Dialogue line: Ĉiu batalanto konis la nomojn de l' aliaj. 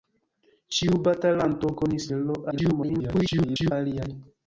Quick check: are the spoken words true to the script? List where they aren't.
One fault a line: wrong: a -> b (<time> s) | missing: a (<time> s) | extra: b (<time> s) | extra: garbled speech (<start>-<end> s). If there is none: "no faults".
missing: la nomojn (2.1 s)
extra: garbled speech (2.5-3.7 s)